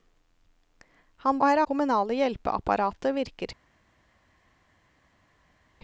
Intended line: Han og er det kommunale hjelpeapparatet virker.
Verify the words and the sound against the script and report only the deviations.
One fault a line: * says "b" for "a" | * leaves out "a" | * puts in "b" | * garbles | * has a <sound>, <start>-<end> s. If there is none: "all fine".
all fine